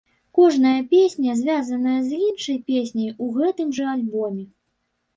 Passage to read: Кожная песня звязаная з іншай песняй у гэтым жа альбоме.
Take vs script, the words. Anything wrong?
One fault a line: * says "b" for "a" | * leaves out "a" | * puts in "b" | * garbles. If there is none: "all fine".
all fine